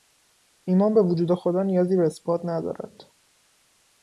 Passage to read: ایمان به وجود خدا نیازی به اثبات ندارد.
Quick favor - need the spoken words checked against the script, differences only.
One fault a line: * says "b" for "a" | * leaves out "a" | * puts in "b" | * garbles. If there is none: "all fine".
all fine